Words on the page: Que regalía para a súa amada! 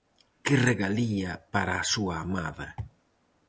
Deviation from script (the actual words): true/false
false